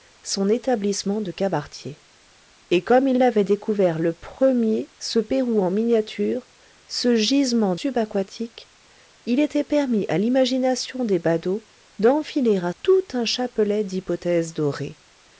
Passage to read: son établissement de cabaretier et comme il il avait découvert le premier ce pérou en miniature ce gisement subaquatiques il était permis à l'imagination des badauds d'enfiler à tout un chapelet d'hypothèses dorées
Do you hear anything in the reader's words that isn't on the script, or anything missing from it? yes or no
no